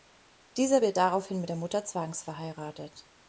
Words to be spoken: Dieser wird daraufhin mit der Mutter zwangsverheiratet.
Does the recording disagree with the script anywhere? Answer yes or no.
no